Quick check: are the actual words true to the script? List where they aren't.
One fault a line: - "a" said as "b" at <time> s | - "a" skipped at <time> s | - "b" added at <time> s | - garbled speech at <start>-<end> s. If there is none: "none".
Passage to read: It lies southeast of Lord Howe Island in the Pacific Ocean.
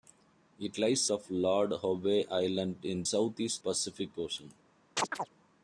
- "southeast" skipped at 1.1 s
- "the" said as "southeast" at 3.0 s